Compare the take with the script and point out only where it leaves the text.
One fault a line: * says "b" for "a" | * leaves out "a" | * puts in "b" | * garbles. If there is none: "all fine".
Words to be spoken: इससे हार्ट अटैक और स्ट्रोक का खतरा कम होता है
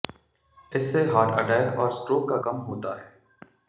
* leaves out "खतरा"